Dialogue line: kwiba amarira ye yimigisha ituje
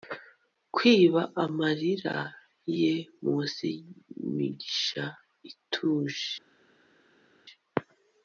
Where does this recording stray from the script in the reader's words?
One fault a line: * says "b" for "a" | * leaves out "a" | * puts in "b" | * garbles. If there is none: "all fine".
* puts in "munsi"